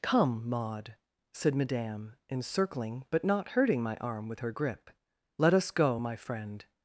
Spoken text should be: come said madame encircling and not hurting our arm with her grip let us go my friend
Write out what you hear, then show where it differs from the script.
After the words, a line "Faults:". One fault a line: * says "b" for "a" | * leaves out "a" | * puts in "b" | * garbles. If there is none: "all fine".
come maud said madame encircling but not hurting my arm with her grip let us go my friend
Faults:
* puts in "maud"
* says "but" for "and"
* says "my" for "our"